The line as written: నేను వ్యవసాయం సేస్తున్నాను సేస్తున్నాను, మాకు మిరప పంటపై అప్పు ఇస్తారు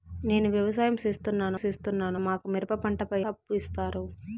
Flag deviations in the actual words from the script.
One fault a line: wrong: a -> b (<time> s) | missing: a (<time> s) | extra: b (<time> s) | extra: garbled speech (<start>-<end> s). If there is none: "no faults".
no faults